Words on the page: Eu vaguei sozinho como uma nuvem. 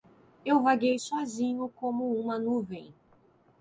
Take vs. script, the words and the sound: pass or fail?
pass